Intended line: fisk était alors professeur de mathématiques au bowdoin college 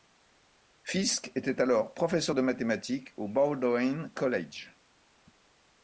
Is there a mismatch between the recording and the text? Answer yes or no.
no